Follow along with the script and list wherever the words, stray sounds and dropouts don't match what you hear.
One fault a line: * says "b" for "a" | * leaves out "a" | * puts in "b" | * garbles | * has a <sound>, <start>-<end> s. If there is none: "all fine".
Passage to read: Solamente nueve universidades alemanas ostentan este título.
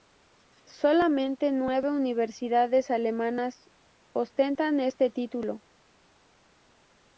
all fine